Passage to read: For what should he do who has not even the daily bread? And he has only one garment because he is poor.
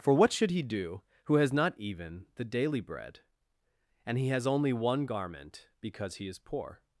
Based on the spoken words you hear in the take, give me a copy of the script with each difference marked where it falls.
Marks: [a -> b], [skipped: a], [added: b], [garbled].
For what should he do who has not even the daily bread? And he has only one garment because he is poor.